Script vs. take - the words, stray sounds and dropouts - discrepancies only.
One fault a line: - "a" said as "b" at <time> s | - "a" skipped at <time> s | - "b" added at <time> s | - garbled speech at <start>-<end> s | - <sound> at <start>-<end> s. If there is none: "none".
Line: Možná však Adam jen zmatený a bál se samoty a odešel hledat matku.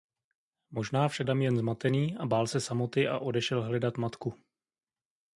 none